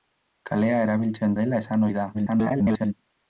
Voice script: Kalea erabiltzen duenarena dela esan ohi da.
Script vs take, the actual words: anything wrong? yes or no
yes